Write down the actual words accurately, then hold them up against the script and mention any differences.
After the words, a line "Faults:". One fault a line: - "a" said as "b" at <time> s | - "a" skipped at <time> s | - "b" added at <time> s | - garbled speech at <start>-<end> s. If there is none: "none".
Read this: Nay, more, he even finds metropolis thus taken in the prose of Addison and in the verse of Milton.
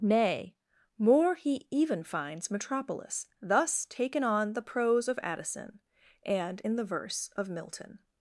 Nay, more, he even finds metropolis thus taken on the prose of Addison and in the verse of Milton.
Faults:
- "in" said as "on" at 4.2 s